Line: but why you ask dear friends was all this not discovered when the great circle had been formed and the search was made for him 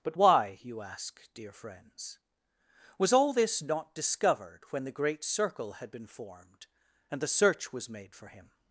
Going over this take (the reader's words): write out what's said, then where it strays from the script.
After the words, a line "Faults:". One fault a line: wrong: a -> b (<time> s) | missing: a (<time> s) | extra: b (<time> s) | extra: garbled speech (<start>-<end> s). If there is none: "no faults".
but why you ask dear friends was all this not discovered when the great circle had been formed and the search was made for him
Faults:
no faults